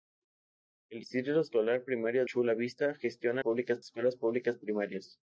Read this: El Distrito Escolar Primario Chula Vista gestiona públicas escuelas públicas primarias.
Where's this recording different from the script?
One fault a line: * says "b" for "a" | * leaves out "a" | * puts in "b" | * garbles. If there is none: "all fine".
all fine